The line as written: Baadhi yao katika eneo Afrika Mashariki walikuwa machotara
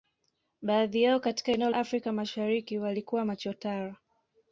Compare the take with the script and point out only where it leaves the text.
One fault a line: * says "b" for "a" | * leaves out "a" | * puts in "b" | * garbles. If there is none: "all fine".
all fine